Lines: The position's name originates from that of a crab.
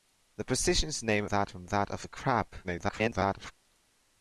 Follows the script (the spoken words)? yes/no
no